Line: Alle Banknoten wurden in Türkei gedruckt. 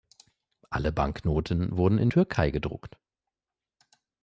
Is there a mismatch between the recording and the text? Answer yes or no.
no